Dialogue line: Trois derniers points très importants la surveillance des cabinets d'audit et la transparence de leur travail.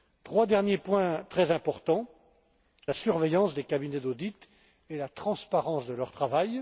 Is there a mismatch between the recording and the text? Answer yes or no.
no